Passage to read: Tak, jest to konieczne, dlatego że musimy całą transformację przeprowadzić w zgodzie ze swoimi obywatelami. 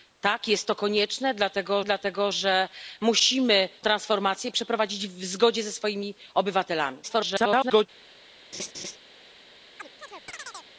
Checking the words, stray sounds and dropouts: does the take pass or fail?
fail